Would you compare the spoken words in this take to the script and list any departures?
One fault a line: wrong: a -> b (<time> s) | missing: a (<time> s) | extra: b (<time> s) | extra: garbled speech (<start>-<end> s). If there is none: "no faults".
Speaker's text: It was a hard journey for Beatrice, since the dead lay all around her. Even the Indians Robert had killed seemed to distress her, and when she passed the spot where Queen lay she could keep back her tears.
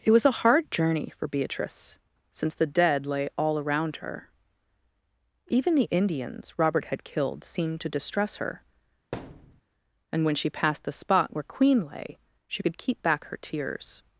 no faults